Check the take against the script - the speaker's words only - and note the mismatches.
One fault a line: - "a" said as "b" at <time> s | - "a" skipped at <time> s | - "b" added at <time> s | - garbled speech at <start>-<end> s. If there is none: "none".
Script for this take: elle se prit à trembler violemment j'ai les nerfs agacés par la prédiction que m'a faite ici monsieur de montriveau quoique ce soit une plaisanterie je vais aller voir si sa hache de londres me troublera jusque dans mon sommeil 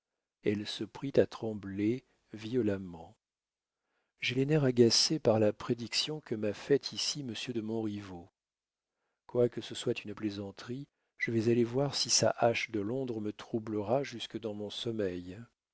none